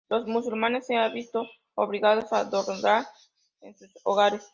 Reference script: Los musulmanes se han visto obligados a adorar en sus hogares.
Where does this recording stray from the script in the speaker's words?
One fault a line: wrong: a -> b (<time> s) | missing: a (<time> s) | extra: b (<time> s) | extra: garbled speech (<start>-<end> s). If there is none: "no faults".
no faults